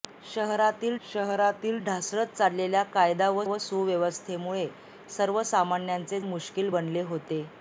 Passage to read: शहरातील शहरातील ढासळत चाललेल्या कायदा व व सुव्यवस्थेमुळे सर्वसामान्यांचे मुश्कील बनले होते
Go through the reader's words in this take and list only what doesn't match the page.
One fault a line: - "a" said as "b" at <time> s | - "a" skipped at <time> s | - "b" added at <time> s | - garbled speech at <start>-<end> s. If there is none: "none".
none